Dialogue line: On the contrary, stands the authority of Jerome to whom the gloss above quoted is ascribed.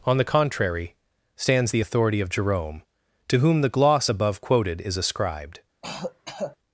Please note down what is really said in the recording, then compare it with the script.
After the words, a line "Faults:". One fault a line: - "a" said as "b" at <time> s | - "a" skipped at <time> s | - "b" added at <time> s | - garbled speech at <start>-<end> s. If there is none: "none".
On the contrary, stands the authority of Jerome to whom the gloss above quoted is ascribed.
Faults:
none